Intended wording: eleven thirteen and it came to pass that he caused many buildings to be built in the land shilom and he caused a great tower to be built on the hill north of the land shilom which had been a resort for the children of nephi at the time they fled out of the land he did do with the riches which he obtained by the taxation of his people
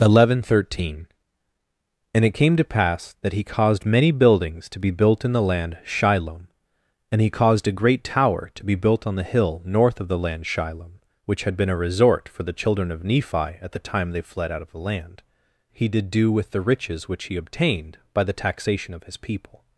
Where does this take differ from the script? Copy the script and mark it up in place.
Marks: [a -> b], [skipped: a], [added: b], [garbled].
eleven thirteen and it came to pass that he caused many buildings to be built in the land shilom and he caused a great tower to be built on the hill north of the land shilom which had been a resort for the children of nephi at the time they fled out of the land he did do with the riches which he obtained by the taxation of his people